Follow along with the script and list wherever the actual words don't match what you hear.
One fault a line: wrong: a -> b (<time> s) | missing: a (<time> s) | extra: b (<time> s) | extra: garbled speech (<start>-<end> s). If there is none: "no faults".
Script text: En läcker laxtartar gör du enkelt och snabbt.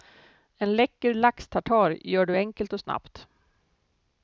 no faults